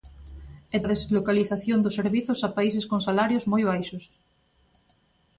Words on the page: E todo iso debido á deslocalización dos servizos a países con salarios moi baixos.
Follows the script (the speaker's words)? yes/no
no